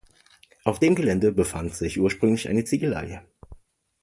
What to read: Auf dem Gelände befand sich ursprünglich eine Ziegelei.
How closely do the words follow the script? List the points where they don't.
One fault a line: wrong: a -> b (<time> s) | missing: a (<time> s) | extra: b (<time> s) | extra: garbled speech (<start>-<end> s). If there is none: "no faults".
no faults